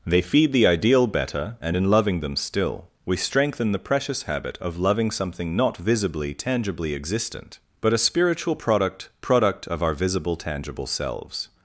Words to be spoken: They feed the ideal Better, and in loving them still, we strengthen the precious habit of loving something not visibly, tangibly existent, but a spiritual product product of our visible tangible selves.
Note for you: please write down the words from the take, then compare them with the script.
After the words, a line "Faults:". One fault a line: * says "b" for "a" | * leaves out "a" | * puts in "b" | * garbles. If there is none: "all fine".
They feed the ideal Better, and in loving them still, we strengthen the precious habit of loving something not visibly, tangibly existent, but a spiritual product product of our visible tangible selves.
Faults:
all fine